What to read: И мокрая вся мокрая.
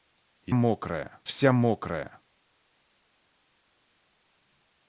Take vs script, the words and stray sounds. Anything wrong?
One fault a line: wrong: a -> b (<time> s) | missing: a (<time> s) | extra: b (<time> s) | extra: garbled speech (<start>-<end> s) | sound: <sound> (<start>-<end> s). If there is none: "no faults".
no faults